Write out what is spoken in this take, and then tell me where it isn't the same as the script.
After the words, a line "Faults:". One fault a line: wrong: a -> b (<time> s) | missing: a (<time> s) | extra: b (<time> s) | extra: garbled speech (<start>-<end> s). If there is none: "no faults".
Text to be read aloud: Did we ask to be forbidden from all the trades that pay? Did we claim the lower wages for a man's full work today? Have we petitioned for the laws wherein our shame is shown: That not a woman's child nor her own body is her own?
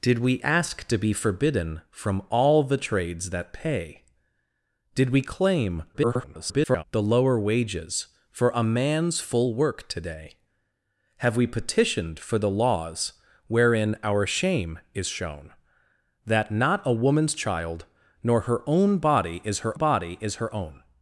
Did we ask to be forbidden from all the trades that pay? Did we claim [garbled] the lower wages for a man's full work today? Have we petitioned for the laws wherein our shame is shown: That not a woman's child nor her own body is her body is her own?
Faults:
extra: garbled speech (5.9-6.8 s)
extra: body is her (19.7 s)